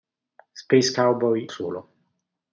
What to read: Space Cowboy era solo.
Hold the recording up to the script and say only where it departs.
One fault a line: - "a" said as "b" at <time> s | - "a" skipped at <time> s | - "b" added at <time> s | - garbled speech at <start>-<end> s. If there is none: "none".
- "era" skipped at 1.5 s